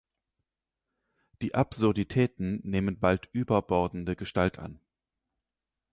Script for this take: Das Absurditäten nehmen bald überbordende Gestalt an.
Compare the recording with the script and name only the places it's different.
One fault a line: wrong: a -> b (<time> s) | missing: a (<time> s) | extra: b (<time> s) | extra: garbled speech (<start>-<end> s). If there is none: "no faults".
wrong: Das -> Die (1.4 s)